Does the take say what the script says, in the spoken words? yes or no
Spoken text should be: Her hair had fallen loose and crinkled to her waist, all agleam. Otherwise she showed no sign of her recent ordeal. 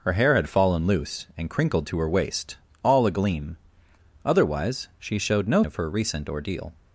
no